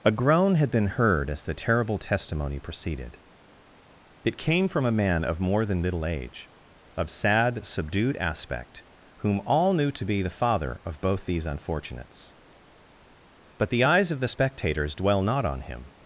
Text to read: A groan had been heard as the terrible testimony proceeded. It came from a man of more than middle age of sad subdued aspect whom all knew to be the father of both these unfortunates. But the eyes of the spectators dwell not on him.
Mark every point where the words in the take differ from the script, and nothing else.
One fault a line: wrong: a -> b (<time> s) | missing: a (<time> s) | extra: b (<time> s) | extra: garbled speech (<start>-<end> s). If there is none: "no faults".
no faults